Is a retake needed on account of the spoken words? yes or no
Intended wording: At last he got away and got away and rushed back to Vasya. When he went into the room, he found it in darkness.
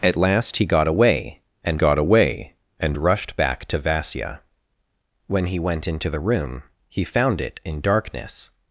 no